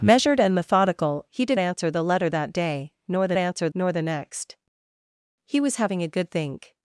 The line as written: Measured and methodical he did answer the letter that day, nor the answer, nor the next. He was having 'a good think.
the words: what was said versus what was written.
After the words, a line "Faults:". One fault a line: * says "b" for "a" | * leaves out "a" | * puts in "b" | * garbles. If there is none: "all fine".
Measured and methodical he did answer the letter that day, nor the answer, nor the next. He was having 'a good think.
Faults:
all fine